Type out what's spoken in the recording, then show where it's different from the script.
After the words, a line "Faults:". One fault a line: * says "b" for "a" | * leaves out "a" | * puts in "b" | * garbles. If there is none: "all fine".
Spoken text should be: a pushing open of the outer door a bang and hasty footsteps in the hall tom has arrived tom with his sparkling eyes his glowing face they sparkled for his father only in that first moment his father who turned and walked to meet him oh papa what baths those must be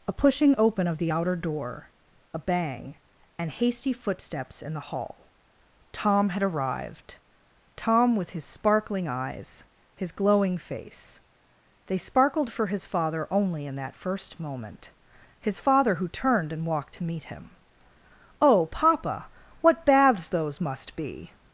a pushing open of the outer door a bang and hasty footsteps in the hall tom had arrived tom with his sparkling eyes his glowing face they sparkled for his father only in that first moment his father who turned and walked to meet him oh papa what baths those must be
Faults:
* says "had" for "has"